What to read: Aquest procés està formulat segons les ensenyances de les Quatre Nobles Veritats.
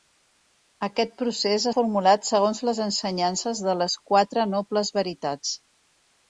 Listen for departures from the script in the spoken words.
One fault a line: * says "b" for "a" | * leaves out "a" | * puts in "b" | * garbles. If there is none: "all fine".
* leaves out "està"